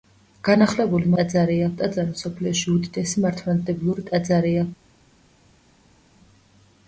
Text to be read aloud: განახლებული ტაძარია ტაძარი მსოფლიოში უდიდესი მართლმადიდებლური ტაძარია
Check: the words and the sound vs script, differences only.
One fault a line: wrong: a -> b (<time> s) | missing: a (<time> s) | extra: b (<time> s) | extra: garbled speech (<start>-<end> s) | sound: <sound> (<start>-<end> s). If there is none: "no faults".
no faults